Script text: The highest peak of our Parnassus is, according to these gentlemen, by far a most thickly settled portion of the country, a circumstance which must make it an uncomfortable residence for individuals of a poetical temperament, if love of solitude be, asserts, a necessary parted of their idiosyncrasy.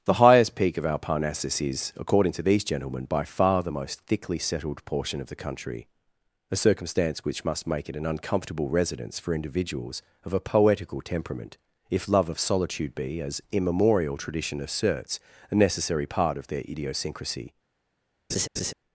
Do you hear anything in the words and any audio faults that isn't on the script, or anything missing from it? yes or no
yes